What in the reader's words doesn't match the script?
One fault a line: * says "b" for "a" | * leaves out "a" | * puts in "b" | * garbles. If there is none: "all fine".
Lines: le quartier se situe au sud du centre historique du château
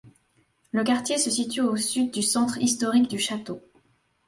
all fine